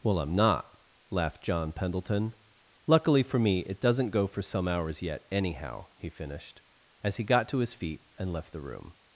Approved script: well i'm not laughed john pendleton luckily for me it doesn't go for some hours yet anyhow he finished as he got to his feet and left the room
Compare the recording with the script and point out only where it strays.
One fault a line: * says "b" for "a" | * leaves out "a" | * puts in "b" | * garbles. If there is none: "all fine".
all fine